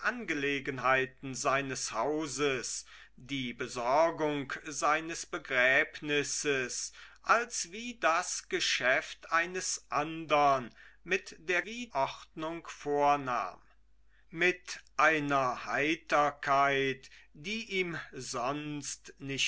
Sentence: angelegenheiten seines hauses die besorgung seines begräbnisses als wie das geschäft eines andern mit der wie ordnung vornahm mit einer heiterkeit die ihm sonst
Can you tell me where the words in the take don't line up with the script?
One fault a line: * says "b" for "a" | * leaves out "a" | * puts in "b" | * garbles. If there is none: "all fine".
all fine